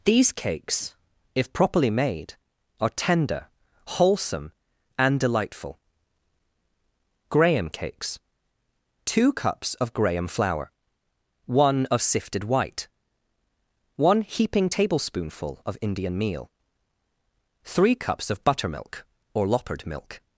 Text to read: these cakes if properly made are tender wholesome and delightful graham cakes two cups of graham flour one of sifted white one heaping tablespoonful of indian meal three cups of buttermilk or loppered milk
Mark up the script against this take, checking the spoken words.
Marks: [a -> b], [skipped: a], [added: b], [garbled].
these cakes if properly made are tender wholesome and delightful graham cakes two cups of graham flour one of sifted white one heaping tablespoonful of indian meal three cups of buttermilk or loppered milk